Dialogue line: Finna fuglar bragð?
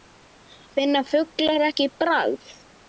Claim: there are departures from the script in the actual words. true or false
true